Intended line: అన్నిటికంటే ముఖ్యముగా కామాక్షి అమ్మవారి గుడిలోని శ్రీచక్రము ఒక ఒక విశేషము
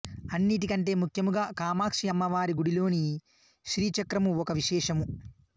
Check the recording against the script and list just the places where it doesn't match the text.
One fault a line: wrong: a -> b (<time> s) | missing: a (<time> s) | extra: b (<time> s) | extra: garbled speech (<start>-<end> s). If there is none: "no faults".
missing: ఒక (4.5 s)